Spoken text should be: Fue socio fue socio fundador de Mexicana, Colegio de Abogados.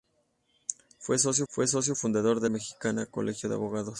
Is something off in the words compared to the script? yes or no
no